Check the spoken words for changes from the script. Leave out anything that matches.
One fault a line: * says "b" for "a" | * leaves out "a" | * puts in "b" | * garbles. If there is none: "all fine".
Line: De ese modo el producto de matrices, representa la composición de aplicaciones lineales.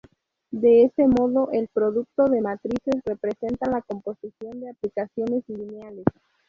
all fine